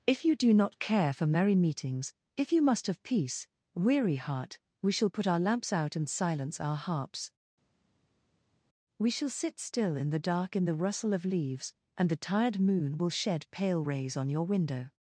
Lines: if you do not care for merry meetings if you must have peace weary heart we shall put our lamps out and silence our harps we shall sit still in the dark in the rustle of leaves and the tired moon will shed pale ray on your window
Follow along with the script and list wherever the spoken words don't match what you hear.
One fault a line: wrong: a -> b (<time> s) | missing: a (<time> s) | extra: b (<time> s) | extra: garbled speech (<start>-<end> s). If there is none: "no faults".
wrong: ray -> rays (13.8 s)